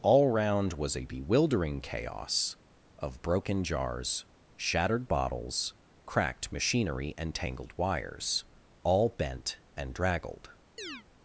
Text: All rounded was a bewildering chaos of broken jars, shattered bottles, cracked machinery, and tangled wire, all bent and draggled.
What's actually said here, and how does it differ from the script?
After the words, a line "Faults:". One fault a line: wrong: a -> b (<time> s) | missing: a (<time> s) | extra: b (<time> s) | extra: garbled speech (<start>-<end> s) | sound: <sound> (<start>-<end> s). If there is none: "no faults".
All round was a bewildering chaos of broken jars, shattered bottles, cracked machinery, and tangled wires, all bent and draggled.
Faults:
wrong: rounded -> round (0.3 s)
wrong: wire -> wires (7.8 s)
sound: chirp (10.8-11.0 s)